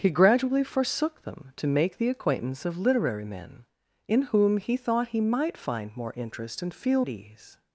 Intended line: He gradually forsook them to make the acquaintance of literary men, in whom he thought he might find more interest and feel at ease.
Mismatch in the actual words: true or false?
false